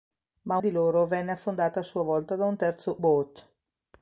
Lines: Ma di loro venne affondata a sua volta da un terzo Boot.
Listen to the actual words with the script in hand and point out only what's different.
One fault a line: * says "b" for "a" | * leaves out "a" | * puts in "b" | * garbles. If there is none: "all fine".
all fine